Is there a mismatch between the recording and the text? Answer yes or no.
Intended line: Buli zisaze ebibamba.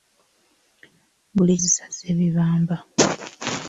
no